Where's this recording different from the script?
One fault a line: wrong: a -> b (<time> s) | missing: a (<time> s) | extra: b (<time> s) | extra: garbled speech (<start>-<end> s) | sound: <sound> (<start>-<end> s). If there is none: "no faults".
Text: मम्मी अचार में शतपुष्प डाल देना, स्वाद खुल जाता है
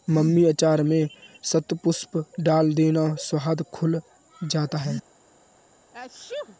sound: sneeze (5.9-6.6 s)